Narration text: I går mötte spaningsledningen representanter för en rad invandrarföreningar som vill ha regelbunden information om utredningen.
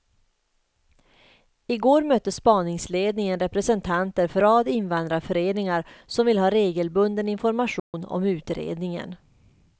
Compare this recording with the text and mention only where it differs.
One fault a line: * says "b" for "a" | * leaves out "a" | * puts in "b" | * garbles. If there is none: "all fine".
* leaves out "en"